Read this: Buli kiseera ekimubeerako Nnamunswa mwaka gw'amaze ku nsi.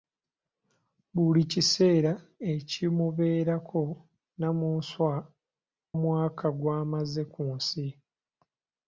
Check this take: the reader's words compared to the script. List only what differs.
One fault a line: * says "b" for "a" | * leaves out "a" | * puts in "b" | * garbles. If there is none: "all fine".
all fine